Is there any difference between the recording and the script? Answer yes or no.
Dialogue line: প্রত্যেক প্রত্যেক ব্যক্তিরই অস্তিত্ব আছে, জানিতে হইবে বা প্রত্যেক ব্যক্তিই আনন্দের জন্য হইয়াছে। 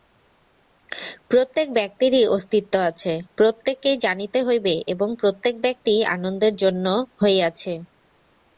yes